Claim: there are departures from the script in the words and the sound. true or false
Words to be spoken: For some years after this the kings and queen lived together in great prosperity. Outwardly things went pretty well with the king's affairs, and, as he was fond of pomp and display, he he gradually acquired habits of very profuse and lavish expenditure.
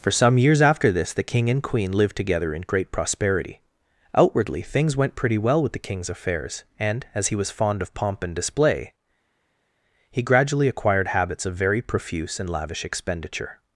true